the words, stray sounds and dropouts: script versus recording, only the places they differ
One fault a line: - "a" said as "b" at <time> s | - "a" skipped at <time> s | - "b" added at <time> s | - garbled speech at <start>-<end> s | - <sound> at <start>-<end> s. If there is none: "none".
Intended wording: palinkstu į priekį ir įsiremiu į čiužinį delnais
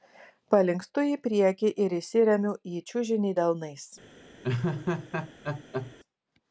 - laugh at 4.4-5.9 s